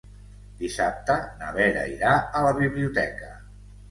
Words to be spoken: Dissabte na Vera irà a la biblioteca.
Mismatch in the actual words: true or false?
false